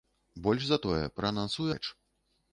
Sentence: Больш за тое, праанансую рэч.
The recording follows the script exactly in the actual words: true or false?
true